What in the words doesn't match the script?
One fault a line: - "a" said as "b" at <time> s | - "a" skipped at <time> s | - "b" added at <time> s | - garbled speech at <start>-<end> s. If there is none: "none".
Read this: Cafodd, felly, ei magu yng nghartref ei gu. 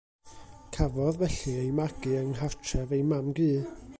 - "mam" added at 3.1 s